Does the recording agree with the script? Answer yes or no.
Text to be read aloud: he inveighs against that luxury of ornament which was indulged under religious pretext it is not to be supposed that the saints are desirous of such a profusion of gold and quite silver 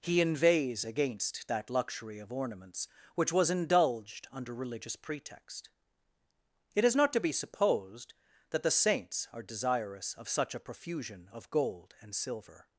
no